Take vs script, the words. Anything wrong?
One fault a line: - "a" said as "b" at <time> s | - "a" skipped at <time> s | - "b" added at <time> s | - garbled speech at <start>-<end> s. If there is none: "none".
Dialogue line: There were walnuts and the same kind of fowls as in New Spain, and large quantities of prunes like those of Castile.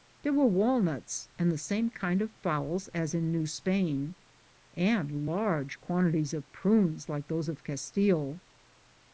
none